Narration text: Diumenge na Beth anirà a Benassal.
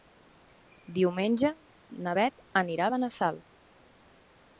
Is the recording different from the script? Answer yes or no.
no